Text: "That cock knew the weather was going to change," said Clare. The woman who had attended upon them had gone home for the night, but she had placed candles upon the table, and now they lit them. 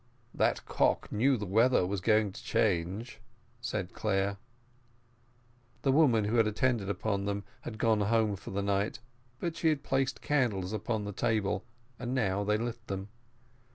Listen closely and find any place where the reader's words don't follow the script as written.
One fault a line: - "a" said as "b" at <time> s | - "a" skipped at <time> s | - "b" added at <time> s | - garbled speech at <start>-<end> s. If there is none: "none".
none